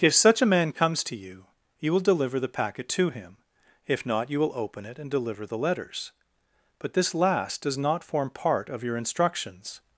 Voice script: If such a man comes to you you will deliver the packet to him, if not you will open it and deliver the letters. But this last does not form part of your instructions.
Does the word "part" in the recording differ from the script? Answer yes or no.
no